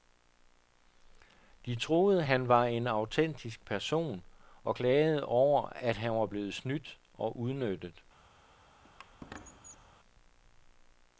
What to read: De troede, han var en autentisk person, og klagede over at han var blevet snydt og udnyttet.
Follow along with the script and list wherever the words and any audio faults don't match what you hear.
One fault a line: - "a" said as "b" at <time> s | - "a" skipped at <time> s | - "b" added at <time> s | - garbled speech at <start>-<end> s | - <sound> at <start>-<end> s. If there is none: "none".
- squeak at 8.8-10.0 s